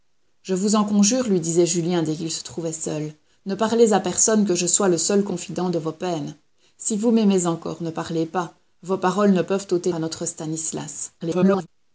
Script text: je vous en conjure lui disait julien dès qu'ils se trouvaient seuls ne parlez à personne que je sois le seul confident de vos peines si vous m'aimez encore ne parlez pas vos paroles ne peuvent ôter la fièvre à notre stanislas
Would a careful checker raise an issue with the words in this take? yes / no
yes